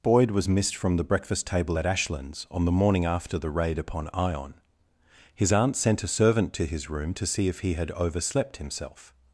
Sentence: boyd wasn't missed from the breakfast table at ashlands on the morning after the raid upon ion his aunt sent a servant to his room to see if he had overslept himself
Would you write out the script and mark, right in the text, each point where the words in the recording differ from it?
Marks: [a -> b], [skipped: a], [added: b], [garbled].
boyd [wasn't -> was] missed from the breakfast table at ashlands on the morning after the raid upon ion his aunt sent a servant to his room to see if he had overslept himself